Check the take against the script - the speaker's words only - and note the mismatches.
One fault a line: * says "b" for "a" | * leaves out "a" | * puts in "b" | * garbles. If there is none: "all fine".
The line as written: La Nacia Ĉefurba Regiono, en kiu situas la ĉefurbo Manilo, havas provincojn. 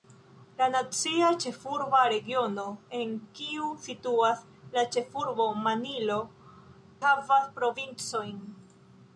all fine